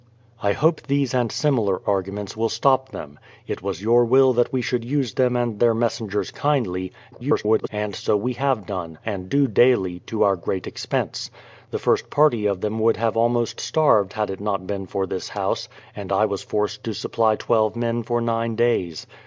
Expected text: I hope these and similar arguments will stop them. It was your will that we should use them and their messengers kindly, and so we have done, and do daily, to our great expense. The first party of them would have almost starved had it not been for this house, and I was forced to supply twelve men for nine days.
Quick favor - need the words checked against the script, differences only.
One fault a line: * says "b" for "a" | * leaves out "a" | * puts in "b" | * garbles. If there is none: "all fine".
* garbles